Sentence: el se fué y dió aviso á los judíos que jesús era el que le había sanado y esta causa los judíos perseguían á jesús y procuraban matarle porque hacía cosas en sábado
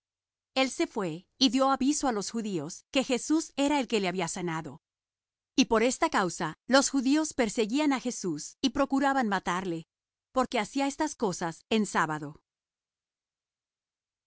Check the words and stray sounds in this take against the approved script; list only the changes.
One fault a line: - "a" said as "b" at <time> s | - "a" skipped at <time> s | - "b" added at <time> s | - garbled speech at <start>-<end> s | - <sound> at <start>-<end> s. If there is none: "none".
- "por" added at 5.7 s
- "estas" added at 10.9 s